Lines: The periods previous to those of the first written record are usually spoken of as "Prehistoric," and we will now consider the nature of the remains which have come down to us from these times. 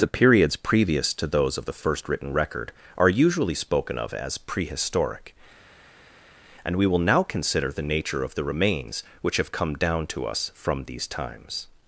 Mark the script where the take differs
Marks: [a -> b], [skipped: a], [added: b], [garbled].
The periods previous to those of the first written record are usually spoken of as "Prehistoric," and we will now consider the nature of the remains which have come down to us from these times.